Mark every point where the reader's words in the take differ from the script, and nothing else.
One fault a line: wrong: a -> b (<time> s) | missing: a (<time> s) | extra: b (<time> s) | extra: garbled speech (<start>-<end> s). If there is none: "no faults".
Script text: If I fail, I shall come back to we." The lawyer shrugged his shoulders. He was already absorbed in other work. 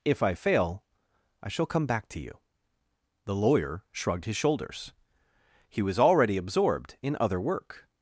wrong: we -> you (2.2 s)